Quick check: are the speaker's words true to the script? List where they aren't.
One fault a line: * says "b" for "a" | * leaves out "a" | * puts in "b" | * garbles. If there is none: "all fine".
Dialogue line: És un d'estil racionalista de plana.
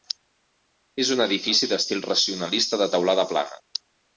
* puts in "edifici"
* puts in "teulada"